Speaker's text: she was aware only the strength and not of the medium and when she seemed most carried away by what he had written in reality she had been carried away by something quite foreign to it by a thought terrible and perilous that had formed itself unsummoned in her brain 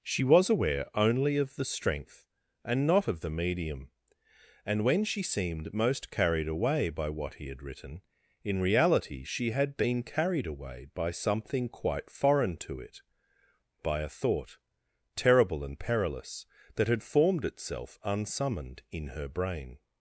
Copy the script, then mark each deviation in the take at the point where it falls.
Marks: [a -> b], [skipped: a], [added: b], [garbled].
she was aware only [added: of] the strength and not of the medium and when she seemed most carried away by what he had written in reality she had been carried away by something quite foreign to it by a thought terrible and perilous that had formed itself unsummoned in her brain